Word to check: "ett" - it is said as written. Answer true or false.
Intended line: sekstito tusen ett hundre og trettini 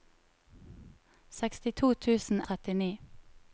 false